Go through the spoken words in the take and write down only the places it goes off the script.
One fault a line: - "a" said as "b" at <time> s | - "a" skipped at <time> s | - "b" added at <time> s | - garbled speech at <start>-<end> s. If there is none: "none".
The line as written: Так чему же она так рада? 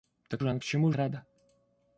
- "чему" skipped at 0.4 s
- "так" said as "чему" at 0.6 s